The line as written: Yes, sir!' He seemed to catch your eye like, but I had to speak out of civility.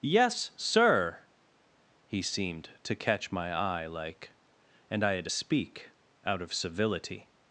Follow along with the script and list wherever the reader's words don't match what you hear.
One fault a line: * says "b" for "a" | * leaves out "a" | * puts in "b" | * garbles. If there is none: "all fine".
* says "my" for "your"
* says "and" for "but"